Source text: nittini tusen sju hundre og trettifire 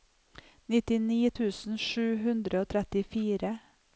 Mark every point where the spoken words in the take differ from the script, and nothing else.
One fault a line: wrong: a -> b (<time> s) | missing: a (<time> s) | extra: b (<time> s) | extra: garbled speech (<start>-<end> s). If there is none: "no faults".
no faults